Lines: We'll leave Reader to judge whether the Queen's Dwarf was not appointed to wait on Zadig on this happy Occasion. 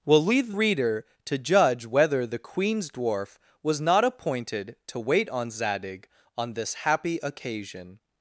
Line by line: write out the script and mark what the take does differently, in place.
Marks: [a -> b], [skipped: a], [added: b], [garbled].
We'll leave Reader to judge whether the Queen's Dwarf was not appointed to wait on Zadig on this happy Occasion.